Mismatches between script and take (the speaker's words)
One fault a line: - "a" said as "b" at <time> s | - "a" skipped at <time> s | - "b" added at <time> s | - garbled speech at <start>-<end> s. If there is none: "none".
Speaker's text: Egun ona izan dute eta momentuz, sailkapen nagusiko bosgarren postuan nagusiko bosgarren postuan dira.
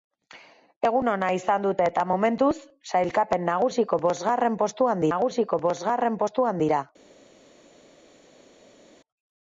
none